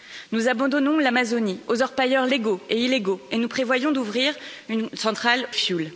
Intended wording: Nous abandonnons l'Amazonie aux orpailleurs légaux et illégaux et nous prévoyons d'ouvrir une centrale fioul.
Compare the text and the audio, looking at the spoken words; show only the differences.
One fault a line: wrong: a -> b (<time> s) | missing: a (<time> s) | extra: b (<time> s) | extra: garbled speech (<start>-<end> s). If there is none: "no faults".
no faults